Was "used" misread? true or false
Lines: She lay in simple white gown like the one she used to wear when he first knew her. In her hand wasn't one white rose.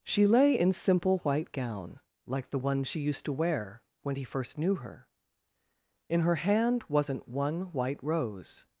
false